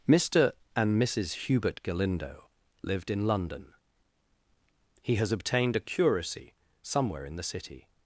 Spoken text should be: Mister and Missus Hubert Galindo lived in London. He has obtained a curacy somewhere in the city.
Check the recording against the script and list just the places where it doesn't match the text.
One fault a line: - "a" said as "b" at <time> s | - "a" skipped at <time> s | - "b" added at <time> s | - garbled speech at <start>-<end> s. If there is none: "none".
none